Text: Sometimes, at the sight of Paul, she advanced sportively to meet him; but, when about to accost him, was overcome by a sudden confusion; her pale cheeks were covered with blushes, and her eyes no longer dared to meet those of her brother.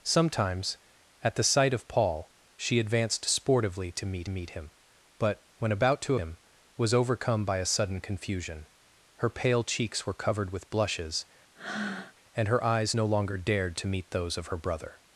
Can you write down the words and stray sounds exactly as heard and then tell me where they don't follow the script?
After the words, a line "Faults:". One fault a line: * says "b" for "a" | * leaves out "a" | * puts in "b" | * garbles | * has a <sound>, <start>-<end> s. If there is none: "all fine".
Sometimes, at the sight of Paul, she advanced sportively to meet meet him; but, when about to him, was overcome by a sudden confusion; her pale cheeks were covered with blushes, and her eyes no longer dared to meet those of her brother.
Faults:
* puts in "meet"
* leaves out "accost"
* has a breath, 11.5-12.1 s